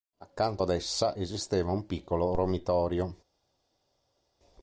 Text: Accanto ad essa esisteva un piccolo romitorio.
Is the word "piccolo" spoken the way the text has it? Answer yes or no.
yes